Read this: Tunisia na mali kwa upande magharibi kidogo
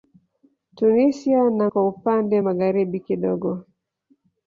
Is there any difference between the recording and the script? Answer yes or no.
yes